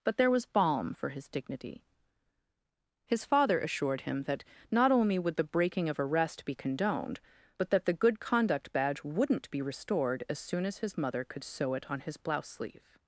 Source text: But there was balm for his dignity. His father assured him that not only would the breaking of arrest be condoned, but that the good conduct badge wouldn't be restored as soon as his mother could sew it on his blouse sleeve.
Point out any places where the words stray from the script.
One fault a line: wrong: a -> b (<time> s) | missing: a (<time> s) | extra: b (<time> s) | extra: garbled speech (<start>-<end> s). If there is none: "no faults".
no faults